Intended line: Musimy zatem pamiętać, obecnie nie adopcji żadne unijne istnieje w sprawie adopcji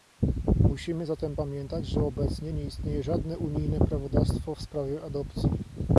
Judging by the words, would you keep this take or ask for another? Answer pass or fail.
fail